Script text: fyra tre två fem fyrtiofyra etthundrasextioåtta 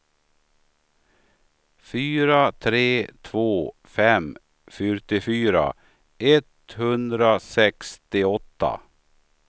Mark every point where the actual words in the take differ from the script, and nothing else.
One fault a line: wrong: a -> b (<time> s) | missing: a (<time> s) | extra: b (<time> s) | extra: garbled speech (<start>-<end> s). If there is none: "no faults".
no faults